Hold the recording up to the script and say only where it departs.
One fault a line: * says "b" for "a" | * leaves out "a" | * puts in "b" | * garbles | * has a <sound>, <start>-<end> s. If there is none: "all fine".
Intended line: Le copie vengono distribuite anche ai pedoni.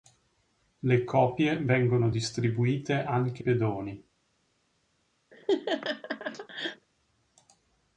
* leaves out "ai"
* has a laugh, 5.3-6.9 s